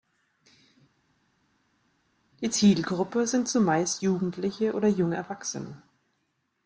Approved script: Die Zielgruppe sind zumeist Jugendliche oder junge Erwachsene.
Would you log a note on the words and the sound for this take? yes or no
no